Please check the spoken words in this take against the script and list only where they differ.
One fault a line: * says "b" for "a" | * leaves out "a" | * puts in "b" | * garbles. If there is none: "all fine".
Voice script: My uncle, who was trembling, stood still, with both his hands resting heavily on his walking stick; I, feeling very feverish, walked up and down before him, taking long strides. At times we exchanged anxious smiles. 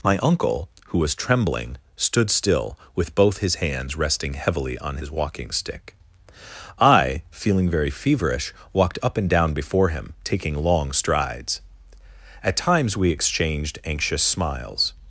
all fine